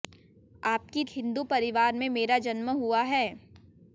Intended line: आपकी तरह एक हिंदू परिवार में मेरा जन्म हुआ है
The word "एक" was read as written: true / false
false